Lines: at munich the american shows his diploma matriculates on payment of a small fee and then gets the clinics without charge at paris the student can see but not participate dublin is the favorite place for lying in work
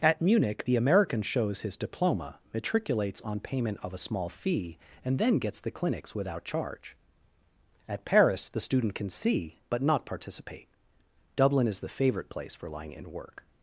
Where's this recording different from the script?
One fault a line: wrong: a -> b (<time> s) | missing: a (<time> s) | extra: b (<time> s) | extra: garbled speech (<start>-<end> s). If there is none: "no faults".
no faults